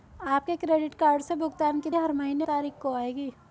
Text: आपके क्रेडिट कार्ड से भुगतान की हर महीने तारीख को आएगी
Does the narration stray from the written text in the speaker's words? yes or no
no